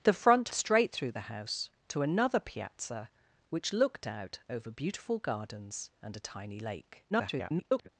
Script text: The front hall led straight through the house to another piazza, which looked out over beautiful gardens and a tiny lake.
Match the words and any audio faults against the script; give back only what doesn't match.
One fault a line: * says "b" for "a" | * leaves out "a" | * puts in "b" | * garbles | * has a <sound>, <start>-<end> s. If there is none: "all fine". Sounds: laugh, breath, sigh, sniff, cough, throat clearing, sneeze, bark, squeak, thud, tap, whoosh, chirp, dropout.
* leaves out "hall led"
* garbles